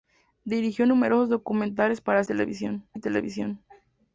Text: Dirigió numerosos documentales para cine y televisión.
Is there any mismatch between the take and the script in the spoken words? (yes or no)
yes